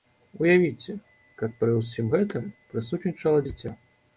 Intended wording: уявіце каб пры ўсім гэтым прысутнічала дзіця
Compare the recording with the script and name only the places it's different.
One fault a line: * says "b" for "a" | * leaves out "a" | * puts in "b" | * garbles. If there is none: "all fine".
all fine